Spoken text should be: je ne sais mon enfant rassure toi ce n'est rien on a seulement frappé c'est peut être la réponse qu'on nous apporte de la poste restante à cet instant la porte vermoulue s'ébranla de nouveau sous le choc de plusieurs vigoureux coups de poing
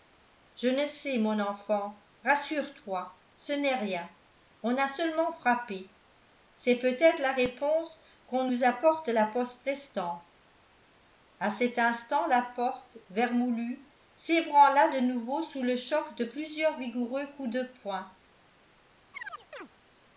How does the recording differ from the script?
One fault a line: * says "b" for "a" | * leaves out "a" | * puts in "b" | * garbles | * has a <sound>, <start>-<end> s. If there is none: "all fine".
* has a chirp, 19.1-19.7 s